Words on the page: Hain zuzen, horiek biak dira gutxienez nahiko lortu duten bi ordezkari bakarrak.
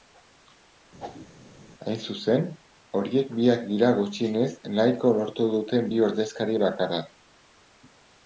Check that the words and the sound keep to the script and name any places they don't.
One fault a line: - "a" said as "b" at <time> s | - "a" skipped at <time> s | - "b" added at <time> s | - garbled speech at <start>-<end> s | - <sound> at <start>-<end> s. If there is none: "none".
- whoosh at 1.0-1.3 s